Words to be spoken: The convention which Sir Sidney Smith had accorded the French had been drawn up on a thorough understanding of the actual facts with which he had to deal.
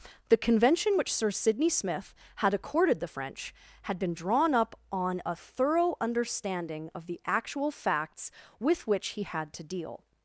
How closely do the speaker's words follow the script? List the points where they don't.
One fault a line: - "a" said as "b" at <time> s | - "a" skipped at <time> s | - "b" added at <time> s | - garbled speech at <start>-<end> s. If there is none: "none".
none